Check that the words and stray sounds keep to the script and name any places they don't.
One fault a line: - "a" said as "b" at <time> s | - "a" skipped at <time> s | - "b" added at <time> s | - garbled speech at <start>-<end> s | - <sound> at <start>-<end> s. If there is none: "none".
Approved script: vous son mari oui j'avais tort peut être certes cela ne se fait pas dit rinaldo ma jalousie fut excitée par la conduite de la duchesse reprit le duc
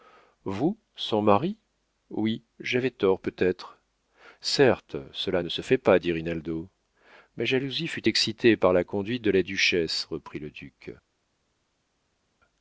none